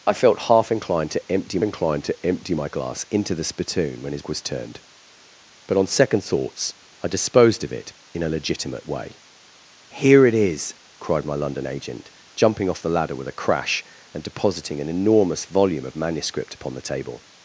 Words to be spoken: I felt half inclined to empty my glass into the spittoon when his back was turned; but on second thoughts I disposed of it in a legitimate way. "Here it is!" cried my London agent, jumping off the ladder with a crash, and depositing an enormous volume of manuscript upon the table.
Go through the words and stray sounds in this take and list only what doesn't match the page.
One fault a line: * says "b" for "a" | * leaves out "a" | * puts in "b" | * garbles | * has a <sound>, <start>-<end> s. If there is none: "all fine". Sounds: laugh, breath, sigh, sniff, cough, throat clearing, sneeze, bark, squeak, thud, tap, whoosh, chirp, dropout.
* puts in "inclined to empty"
* leaves out "back"